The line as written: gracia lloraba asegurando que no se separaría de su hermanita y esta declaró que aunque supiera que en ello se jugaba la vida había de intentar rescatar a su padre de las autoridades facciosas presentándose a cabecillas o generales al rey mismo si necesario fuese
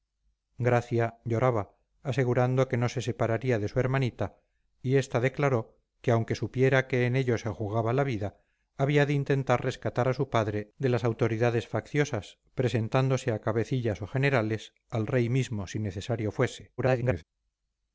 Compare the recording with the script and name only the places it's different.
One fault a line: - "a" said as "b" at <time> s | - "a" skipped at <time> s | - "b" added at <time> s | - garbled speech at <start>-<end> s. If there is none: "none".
- garbled speech at 16.8-17.2 s